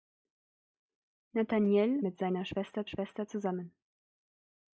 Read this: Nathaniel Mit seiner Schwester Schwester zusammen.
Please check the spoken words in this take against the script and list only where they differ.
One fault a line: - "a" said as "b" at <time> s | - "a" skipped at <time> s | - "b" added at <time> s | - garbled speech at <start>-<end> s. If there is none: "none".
none